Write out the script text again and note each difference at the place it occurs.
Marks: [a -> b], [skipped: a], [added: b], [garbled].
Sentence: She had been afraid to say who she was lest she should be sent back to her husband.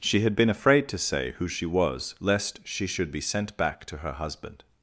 She had been afraid to say who she was lest she should be sent back to her husband.